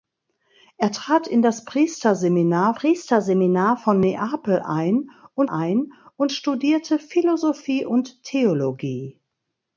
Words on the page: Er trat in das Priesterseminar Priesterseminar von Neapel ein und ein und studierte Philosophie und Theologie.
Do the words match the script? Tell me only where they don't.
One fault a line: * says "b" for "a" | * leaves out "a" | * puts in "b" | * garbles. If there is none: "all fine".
all fine